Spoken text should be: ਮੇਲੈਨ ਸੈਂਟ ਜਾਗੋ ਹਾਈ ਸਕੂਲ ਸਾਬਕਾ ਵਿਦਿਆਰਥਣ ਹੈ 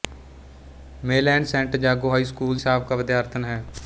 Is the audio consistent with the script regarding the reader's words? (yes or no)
yes